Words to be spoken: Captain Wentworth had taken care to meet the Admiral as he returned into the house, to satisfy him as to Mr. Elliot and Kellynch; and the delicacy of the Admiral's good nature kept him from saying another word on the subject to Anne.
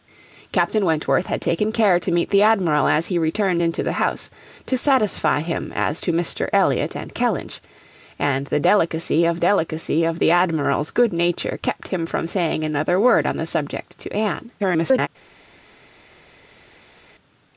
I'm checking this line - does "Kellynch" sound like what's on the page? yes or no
yes